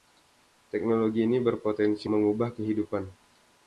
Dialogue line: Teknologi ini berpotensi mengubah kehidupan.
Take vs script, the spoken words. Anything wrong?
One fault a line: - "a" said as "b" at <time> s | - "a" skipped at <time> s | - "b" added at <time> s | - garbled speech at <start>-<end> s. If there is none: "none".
none